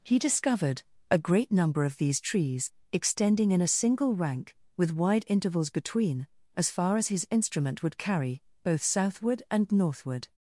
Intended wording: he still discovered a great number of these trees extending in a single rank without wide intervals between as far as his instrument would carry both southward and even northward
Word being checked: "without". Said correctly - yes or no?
no